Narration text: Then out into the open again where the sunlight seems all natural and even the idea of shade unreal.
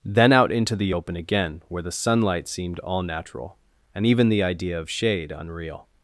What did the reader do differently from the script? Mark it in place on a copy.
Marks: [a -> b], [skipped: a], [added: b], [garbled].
Then out into the open again where the sunlight [seems -> seemed] all natural and even the idea of shade unreal.